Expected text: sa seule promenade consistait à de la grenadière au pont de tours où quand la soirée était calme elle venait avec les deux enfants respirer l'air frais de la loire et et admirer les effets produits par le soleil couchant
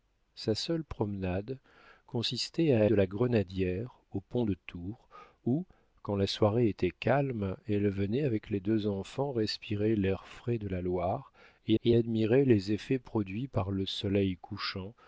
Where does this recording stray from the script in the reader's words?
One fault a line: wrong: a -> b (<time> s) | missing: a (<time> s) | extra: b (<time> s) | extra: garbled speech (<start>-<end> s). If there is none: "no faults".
no faults